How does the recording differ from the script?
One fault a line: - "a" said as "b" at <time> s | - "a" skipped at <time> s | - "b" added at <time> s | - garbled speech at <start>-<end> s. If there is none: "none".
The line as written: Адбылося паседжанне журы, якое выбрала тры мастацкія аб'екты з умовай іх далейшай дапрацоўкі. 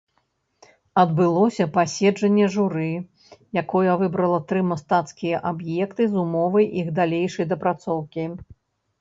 none